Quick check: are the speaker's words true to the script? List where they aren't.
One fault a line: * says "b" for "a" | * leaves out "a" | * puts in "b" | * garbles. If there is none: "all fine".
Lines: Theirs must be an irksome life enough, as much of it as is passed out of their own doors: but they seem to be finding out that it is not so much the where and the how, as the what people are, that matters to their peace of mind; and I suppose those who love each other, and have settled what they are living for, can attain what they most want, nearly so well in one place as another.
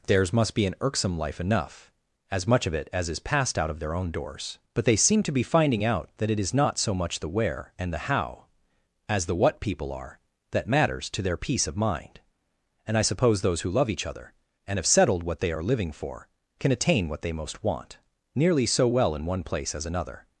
all fine